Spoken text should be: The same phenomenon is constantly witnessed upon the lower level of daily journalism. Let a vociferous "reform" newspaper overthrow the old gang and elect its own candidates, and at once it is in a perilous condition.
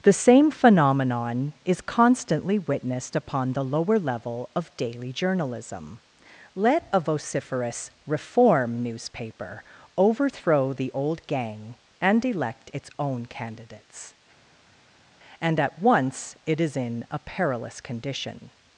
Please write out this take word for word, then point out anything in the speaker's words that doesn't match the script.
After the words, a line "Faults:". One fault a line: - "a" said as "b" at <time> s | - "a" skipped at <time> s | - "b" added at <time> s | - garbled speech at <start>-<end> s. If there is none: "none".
The same phenomenon is constantly witnessed upon the lower level of daily journalism. Let a vociferous "reform" newspaper overthrow the old gang and elect its own candidates, and at once it is in a perilous condition.
Faults:
none